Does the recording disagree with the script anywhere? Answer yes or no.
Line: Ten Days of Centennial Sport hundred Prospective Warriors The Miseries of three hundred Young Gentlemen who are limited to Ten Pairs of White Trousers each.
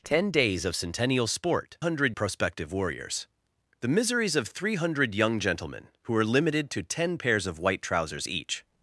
no